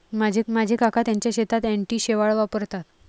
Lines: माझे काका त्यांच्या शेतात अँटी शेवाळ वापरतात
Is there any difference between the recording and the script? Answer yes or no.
yes